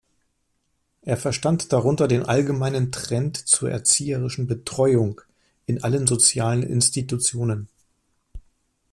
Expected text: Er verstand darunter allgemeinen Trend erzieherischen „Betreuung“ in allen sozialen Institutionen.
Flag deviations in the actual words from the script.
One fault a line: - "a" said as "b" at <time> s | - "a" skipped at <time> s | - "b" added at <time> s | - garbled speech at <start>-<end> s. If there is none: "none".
- "den" added at 2.1 s
- "zur" added at 3.4 s